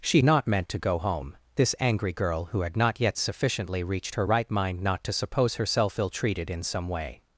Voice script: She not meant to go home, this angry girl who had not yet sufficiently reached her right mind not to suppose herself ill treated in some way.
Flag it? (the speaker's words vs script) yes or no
no